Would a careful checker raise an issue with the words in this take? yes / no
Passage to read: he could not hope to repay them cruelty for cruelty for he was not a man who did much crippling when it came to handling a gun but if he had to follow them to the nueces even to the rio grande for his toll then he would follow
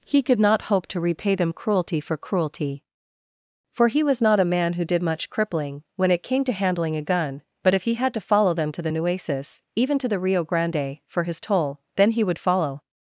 no